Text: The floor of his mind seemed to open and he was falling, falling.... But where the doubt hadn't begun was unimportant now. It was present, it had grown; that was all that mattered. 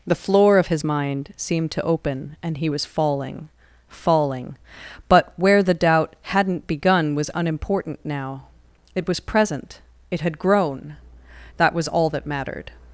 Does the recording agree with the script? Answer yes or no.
yes